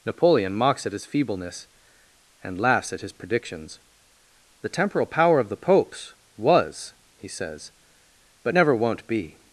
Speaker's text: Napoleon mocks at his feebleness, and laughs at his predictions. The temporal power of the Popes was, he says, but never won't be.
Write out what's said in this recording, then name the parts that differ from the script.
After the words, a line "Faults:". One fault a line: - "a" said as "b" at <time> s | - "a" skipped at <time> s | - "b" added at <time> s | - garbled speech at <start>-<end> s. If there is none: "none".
Napoleon mocks at his feebleness, and laughs at his predictions. The temporal power of the Popes was, he says, but never won't be.
Faults:
none